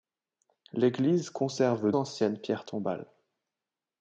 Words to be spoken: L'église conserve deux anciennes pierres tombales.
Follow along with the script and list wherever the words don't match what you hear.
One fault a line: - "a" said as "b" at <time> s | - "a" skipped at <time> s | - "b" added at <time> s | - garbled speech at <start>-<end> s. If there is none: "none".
- "deux" skipped at 1.9 s